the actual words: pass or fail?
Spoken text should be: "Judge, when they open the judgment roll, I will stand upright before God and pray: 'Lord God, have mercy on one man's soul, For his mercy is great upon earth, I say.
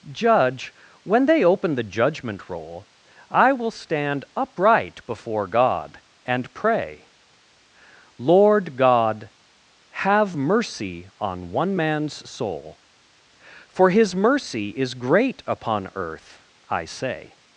pass